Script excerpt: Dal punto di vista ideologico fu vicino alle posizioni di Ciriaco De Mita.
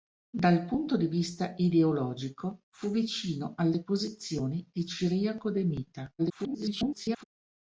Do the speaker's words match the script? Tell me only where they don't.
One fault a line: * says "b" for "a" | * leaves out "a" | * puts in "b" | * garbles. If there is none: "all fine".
* garbles